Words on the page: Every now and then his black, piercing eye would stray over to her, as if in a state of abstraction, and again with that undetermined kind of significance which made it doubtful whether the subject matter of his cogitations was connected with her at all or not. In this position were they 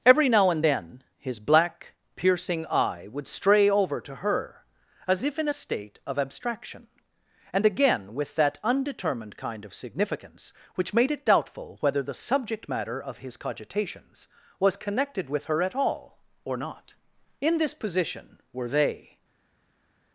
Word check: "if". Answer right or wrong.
right